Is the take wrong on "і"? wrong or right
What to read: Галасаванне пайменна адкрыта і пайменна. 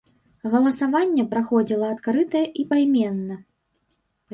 right